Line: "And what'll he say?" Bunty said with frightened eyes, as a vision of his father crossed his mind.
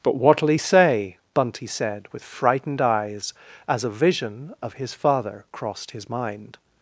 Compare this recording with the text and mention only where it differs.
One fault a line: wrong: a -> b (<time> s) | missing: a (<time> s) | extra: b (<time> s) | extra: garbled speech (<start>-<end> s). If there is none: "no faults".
wrong: And -> But (0.0 s)